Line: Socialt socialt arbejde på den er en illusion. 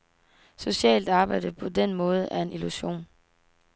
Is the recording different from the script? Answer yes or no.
yes